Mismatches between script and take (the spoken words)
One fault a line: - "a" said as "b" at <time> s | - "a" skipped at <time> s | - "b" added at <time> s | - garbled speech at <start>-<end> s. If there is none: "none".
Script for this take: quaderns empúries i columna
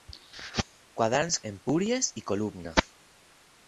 none